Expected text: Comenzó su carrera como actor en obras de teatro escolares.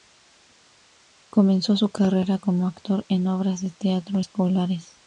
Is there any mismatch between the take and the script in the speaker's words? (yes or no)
no